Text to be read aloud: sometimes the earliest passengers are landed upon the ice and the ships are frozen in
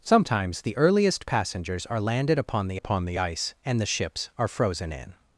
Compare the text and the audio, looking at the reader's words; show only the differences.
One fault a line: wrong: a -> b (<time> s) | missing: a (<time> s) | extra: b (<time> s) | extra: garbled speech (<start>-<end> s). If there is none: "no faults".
extra: upon the (2.7 s)